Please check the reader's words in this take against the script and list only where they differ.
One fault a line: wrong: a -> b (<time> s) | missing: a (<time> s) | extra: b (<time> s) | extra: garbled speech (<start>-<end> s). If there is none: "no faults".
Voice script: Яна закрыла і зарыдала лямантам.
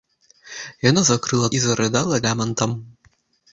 no faults